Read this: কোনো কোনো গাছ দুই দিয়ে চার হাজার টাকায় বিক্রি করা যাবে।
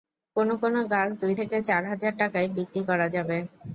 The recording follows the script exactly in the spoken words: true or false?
false